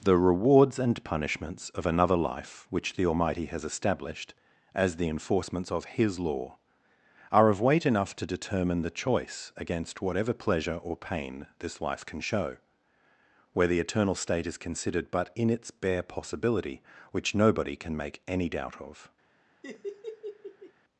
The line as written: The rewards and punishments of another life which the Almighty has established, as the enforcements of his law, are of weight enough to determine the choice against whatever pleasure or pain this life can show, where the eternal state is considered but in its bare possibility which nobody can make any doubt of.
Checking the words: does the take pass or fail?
pass